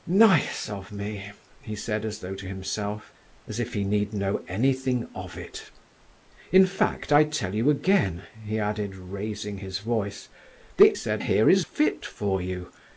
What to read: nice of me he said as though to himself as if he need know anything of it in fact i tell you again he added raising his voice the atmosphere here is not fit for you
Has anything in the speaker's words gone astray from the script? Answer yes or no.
yes